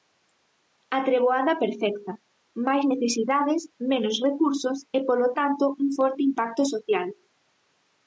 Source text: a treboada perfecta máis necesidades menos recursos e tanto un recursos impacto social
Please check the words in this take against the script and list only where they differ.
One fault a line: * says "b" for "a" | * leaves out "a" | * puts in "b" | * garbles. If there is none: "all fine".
* puts in "polo"
* says "forte" for "recursos"